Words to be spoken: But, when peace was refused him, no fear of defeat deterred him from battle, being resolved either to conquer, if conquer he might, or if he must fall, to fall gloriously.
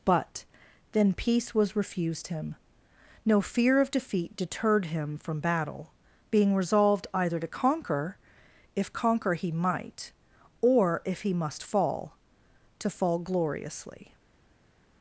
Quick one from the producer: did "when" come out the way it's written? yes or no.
no